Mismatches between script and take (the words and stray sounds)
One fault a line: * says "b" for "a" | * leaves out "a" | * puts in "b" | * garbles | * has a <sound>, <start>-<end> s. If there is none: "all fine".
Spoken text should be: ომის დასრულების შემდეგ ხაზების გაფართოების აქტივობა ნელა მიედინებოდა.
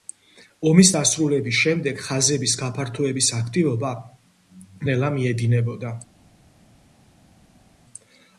all fine